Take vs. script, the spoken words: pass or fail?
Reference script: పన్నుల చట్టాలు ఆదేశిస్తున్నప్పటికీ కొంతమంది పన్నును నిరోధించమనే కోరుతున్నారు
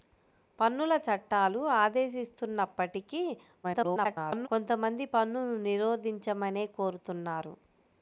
fail